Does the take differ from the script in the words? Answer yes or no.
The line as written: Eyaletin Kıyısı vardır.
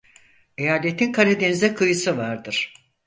yes